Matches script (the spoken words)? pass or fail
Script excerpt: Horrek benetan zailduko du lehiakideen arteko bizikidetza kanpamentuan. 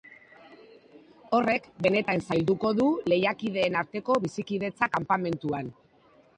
pass